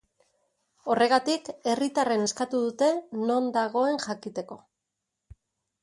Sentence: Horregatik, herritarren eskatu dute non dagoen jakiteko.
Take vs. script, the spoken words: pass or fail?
pass